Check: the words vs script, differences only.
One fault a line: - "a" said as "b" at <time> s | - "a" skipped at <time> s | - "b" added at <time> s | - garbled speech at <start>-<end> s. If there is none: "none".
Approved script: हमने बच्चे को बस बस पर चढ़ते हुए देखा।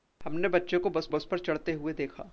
none